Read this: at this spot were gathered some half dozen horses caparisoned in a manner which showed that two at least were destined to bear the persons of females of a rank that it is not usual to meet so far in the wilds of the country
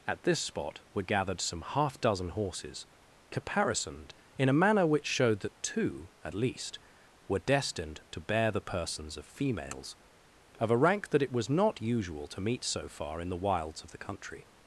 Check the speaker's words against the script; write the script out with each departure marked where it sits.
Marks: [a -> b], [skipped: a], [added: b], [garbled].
at this spot were gathered some half dozen horses caparisoned in a manner which showed that two at least were destined to bear the persons of females of a rank that it [is -> was] not usual to meet so far in the wilds of the country